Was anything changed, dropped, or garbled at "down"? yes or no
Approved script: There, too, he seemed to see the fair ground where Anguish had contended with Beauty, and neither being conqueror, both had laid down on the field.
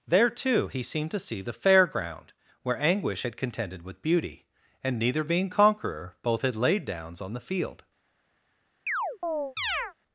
yes